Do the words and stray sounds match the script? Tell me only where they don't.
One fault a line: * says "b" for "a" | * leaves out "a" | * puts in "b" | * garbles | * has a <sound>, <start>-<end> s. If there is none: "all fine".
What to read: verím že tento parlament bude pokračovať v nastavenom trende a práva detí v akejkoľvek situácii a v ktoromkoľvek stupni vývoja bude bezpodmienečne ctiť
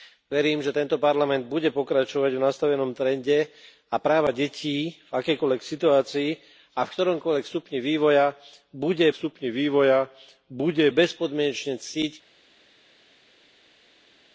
* puts in "stupni vývoja bude"